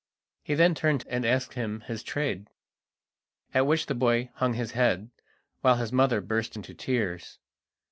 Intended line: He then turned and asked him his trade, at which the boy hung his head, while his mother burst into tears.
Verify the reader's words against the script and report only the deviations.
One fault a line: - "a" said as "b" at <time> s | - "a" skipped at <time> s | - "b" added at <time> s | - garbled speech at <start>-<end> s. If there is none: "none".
none